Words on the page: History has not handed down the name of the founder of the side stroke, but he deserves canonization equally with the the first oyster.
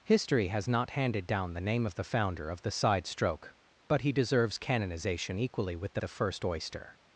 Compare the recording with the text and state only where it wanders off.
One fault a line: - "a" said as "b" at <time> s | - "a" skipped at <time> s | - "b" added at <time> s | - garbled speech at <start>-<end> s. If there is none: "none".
none